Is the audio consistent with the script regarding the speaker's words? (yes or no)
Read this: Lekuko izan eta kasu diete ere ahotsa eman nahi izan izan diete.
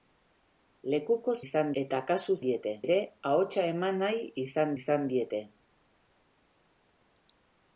yes